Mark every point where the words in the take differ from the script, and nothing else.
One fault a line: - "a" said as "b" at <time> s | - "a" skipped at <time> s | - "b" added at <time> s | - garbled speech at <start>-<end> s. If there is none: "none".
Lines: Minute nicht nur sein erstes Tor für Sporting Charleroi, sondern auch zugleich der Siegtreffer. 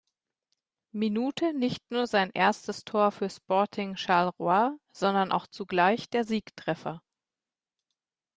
none